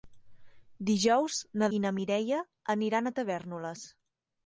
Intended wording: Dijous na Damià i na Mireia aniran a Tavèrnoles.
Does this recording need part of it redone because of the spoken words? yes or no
yes